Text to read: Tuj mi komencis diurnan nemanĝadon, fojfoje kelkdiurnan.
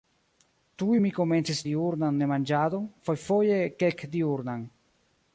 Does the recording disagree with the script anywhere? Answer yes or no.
no